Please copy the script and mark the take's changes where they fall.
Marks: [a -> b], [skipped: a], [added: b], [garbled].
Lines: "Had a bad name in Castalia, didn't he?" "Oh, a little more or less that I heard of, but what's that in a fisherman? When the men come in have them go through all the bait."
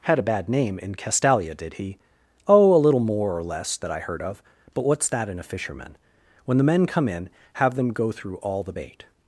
"Had a bad name in Castalia, [didn't -> did] he?" "Oh, a little more or less that I heard of, but what's that in a fisherman? When the men come in have them go through all the bait."